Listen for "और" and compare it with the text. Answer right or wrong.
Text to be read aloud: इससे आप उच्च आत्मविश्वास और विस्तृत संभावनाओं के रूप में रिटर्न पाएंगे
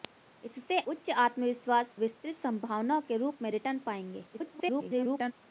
wrong